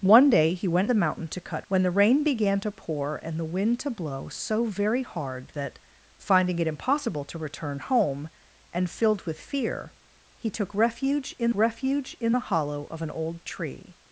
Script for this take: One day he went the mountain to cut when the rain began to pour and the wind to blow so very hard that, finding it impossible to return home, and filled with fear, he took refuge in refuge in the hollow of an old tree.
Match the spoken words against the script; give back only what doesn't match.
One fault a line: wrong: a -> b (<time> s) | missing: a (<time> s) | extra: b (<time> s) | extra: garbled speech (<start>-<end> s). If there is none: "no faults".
no faults